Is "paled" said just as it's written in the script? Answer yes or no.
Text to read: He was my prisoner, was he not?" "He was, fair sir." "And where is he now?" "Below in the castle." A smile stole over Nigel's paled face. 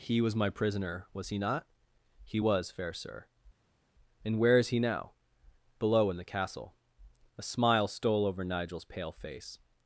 no